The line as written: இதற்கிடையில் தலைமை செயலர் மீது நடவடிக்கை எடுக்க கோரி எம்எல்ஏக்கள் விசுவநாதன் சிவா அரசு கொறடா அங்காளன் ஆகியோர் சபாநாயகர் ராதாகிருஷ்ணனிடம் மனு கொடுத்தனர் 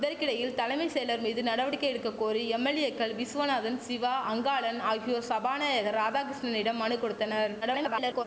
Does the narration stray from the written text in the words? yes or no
yes